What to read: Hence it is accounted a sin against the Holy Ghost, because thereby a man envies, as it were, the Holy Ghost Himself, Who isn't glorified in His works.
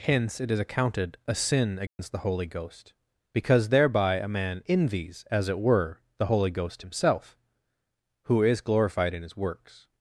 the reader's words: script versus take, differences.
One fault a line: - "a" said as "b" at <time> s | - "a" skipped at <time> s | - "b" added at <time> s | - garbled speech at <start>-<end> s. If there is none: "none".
- "isn't" said as "is" at 8.4 s